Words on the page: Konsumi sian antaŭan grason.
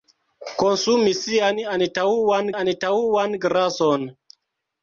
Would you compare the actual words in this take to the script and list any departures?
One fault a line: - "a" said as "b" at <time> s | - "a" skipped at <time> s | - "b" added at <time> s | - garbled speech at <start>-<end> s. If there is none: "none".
- "antaŭan" added at 2.6 s